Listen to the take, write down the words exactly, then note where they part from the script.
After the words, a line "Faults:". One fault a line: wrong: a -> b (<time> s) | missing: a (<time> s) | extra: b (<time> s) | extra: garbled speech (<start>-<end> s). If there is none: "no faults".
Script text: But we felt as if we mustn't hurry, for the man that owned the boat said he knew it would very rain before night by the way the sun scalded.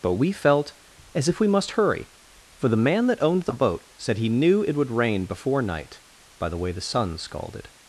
But we felt as if we must hurry, for the man that owned the boat said he knew it would rain before night by the way the sun scalded.
Faults:
wrong: mustn't -> must (1.5 s)
missing: very (4.9 s)